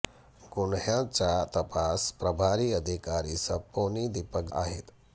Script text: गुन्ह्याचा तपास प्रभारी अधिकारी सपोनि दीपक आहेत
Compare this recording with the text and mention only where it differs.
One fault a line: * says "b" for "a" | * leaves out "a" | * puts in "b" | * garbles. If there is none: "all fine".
all fine